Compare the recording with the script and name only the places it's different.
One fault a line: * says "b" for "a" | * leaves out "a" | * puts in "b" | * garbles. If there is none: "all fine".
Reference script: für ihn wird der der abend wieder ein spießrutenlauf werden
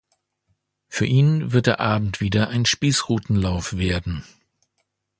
* leaves out "der"